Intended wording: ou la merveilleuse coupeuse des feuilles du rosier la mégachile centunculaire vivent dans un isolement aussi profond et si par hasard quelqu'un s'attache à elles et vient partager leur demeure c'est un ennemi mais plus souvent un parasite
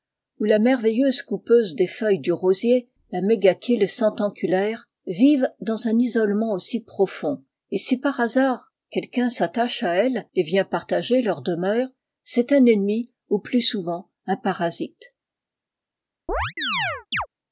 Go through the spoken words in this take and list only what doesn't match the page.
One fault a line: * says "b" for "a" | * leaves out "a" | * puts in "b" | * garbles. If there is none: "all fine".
* says "ou" for "mais"